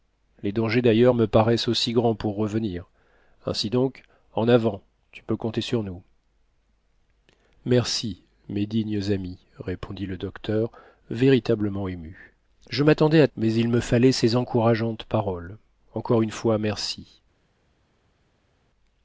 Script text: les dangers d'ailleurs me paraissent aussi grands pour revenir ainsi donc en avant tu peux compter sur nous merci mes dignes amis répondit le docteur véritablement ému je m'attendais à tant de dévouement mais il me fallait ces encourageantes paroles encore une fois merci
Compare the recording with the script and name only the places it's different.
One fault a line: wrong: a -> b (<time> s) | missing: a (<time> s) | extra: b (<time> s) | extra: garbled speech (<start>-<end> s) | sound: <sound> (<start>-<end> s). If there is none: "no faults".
missing: tant de dévouement (13.3 s)